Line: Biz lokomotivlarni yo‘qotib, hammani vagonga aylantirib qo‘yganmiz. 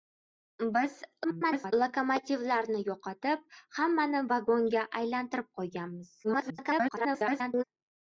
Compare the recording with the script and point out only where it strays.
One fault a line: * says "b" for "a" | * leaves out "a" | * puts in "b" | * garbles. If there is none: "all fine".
* garbles
* garbles